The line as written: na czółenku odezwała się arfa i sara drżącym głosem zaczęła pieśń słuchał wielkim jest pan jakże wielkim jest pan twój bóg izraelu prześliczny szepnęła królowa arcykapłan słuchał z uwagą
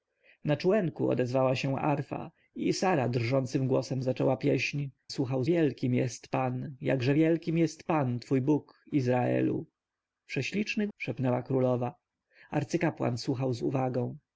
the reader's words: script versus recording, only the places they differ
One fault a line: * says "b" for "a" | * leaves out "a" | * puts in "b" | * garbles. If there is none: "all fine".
all fine